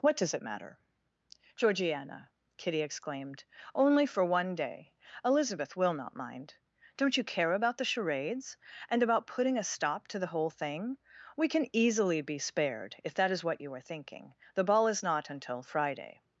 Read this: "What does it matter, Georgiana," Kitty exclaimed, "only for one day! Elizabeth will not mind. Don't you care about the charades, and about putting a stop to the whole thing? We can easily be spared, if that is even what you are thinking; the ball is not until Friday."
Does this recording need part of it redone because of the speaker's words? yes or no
yes